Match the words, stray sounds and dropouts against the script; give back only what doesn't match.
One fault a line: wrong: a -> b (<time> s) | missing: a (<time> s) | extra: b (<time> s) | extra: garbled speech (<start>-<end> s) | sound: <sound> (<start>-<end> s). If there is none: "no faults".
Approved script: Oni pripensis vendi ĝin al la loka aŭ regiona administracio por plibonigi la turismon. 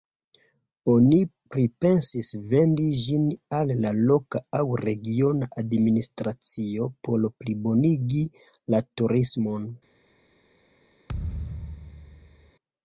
sound: thud (11.1-12.5 s)